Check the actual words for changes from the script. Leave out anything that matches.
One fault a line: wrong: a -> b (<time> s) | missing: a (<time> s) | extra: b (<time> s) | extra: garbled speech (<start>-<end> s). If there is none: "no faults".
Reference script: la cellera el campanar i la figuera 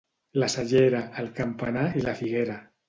no faults